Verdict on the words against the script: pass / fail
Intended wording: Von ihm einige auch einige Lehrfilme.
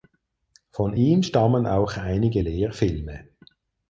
fail